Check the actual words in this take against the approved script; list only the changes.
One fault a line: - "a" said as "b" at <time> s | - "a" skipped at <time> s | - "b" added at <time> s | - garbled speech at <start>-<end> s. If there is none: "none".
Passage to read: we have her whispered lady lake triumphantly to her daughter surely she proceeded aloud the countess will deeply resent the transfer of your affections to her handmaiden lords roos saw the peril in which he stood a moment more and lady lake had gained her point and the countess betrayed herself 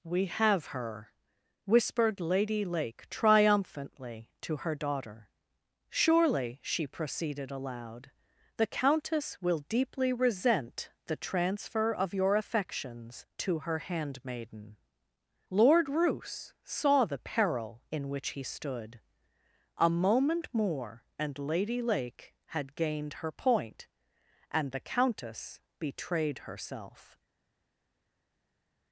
- "lords" said as "lord" at 15.5 s